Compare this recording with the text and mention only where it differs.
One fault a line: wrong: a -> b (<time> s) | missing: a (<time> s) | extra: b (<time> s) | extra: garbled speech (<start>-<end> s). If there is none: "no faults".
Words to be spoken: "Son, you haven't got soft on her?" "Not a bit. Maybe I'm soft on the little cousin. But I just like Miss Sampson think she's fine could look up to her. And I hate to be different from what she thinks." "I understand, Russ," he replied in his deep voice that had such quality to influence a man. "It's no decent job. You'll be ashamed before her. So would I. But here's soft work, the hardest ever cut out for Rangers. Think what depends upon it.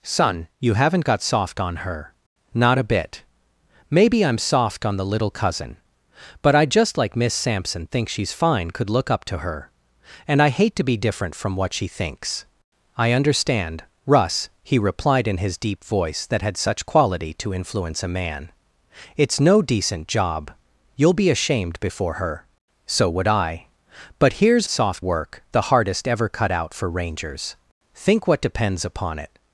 no faults